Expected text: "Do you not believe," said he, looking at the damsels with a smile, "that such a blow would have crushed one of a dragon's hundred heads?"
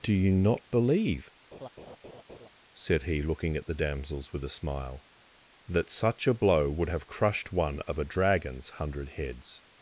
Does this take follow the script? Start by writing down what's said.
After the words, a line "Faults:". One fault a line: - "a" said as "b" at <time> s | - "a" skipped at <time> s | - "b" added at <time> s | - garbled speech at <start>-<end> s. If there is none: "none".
"Do you not believe," said he, looking at the damsels with a smile, "that such a blow would have crushed one of a dragon's hundred heads?"
Faults:
none